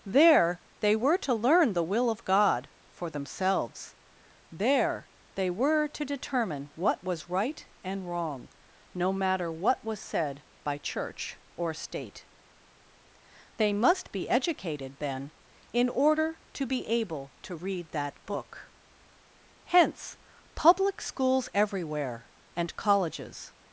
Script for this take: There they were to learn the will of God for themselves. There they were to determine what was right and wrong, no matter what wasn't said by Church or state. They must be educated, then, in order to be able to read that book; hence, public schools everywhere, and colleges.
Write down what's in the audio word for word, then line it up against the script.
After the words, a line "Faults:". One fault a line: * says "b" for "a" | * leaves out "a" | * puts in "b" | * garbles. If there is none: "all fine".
There they were to learn the will of God for themselves. There they were to determine what was right and wrong, no matter what was said by Church or state. They must be educated, then, in order to be able to read that book; hence, public schools everywhere, and colleges.
Faults:
* says "was" for "wasn't"